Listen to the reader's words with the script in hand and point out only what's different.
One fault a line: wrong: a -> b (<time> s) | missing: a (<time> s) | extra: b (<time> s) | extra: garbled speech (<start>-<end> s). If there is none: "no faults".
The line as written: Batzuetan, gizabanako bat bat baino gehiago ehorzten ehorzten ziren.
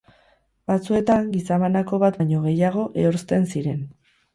missing: bat (2.2 s)
missing: ehorzten (3.5 s)